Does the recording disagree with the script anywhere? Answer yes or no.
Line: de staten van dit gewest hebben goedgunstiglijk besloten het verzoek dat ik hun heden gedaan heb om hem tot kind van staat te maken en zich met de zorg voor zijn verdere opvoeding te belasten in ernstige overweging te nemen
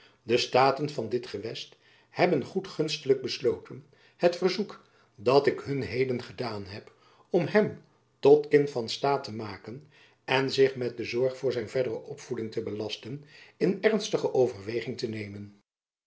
no